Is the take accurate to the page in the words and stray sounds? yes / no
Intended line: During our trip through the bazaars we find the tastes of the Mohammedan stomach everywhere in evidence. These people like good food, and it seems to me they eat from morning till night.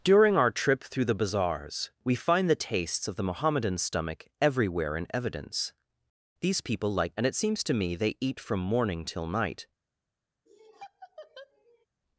no